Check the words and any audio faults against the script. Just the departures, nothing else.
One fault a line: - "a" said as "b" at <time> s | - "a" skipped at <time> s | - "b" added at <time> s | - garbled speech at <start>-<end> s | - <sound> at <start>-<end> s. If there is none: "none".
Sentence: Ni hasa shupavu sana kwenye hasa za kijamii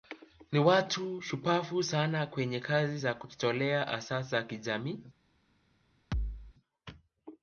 - "hasa" said as "watu" at 0.6 s
- "kazi za kujitolea" added at 2.6 s
- thud at 6.1-6.5 s